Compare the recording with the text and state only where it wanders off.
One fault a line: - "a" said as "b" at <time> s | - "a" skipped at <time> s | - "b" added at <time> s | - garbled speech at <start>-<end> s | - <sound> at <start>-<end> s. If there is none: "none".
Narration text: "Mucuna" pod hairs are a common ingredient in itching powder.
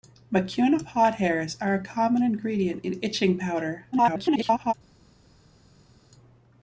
- garbled speech at 3.9-4.7 s